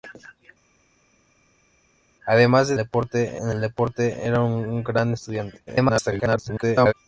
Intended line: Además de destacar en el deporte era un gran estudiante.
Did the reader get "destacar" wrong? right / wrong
wrong